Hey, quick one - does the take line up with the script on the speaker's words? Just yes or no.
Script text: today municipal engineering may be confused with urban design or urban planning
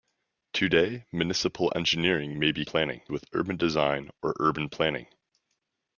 no